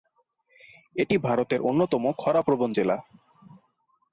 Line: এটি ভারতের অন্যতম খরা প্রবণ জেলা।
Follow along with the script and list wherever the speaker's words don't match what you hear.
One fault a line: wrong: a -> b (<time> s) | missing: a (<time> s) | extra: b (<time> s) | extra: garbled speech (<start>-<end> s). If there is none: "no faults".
no faults